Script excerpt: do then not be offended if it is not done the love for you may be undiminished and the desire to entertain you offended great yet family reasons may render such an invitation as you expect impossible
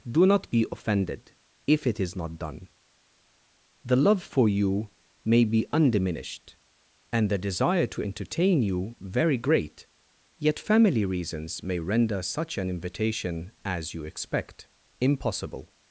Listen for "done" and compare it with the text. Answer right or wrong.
right